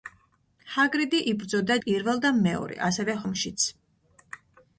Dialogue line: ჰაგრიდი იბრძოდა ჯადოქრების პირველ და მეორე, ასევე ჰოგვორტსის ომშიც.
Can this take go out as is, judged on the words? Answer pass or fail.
fail